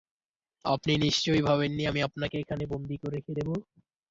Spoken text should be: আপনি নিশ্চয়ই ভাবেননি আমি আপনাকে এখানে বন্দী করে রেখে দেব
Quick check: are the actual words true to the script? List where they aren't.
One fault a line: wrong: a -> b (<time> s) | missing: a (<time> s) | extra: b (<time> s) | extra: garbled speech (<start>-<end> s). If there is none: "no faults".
no faults